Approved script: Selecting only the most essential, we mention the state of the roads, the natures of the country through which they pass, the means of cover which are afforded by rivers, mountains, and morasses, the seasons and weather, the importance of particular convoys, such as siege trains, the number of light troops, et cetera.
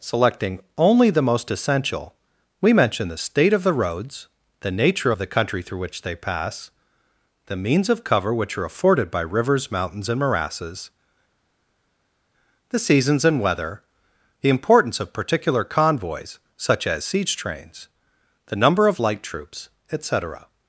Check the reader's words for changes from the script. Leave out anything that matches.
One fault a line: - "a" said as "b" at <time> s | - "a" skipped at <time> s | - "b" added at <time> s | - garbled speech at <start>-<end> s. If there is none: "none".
- "natures" said as "nature" at 4.7 s